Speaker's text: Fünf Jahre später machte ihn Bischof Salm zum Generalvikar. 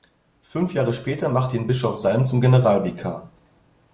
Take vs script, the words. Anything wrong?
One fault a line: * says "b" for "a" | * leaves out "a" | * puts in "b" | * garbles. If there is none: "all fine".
all fine